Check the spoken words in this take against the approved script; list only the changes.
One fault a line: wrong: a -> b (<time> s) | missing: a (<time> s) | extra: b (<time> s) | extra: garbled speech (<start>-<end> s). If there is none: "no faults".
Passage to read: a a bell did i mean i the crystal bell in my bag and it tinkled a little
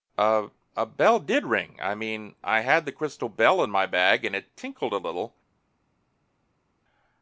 extra: ring (1.4 s)
extra: had (2.6 s)